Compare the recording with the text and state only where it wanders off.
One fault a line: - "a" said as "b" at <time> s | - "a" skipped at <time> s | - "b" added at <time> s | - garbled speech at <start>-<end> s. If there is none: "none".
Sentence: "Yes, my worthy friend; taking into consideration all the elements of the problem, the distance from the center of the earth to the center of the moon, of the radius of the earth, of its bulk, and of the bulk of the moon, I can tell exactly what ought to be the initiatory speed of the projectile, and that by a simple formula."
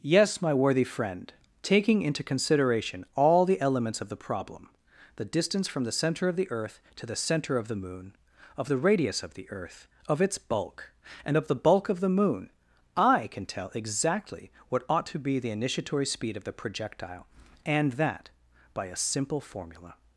none